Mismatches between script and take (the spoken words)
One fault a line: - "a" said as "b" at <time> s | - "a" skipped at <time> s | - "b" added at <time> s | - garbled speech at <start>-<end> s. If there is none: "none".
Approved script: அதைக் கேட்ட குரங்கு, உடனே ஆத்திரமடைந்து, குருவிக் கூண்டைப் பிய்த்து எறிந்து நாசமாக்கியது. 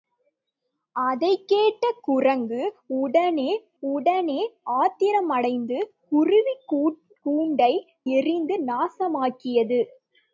- "உடனே" added at 3.8 s
- "பிய்த்து" skipped at 7.9 s